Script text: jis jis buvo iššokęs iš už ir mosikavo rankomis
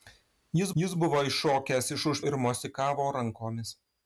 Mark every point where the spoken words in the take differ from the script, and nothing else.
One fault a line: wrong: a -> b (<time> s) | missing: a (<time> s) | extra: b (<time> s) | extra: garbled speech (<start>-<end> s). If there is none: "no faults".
no faults